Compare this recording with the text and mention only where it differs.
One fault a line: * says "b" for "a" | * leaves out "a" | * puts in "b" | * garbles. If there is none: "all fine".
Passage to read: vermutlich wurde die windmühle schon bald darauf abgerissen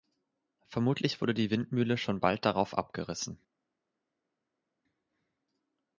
all fine